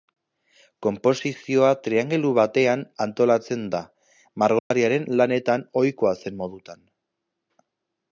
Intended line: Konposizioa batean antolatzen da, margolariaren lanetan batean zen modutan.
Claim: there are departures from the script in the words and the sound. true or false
true